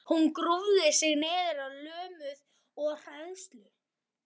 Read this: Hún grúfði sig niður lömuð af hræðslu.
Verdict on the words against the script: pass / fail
pass